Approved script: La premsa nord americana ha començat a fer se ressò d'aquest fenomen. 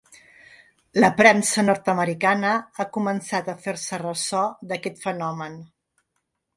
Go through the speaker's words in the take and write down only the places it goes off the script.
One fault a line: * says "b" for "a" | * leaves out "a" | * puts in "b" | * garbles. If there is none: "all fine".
all fine